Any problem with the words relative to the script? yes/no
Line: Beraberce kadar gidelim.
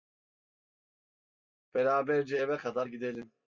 yes